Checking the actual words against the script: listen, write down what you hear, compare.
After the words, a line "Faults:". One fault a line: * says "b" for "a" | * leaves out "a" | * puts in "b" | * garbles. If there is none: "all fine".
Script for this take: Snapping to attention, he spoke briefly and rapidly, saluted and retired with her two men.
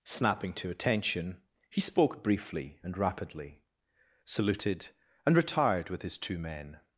Snapping to attention, he spoke briefly and rapidly, saluted and retired with his two men.
Faults:
* says "his" for "her"